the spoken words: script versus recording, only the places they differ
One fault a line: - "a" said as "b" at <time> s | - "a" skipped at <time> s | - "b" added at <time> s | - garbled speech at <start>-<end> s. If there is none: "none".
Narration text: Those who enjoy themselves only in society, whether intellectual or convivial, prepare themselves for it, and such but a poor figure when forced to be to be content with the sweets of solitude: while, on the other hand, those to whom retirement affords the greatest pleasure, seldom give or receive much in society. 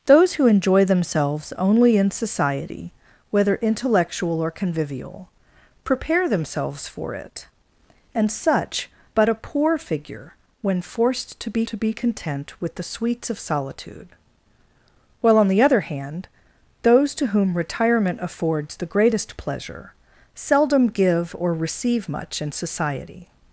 none